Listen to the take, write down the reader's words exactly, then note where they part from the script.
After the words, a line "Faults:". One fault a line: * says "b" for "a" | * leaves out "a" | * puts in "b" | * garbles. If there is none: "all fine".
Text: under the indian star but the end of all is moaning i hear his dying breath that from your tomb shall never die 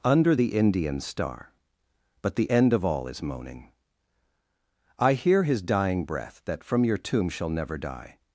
under the indian star but the end of all is moaning i hear his dying breath that from your tomb shall never die
Faults:
all fine